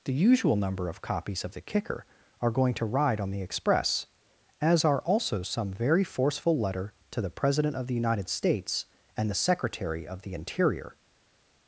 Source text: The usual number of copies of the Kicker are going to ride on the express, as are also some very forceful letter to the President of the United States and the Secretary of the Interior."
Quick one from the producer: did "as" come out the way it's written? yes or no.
yes